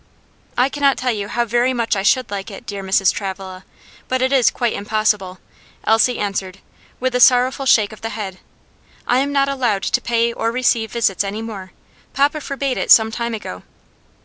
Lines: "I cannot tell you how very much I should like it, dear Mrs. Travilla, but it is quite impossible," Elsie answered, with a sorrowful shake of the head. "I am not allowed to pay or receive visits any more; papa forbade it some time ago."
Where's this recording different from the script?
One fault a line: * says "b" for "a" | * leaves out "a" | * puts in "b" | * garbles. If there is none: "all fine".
all fine